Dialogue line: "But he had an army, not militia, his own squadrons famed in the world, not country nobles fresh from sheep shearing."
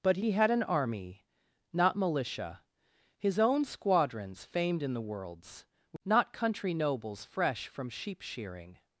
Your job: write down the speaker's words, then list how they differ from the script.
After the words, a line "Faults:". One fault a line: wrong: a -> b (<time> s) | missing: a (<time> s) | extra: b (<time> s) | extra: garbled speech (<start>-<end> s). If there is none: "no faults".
"But he had an army, not militia, his own squadrons famed in the worlds, not country nobles fresh from sheep shearing."
Faults:
wrong: world -> worlds (5.0 s)